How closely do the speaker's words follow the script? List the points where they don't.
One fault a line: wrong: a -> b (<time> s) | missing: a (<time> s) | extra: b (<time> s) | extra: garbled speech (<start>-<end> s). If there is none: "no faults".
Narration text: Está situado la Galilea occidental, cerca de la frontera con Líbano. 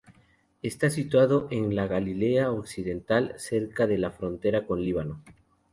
extra: en (1.5 s)